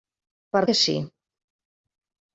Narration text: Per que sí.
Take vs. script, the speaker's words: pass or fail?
pass